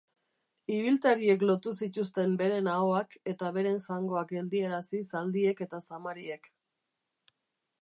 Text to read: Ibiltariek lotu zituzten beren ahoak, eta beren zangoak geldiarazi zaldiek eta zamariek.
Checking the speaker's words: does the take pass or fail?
pass